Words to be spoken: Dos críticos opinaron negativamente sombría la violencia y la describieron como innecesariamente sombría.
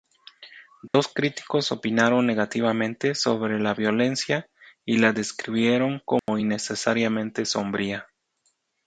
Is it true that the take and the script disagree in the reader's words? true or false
true